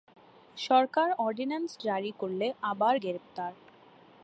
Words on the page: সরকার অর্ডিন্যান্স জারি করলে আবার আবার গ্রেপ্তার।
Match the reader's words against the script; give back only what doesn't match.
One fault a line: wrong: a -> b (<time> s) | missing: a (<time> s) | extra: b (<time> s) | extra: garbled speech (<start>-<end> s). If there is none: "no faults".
missing: আবার (2.9 s)